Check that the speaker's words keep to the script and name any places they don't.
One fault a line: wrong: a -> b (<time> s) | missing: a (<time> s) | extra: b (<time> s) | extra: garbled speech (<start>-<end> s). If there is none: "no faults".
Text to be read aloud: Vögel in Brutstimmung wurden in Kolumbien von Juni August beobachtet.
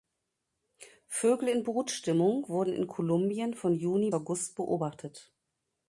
no faults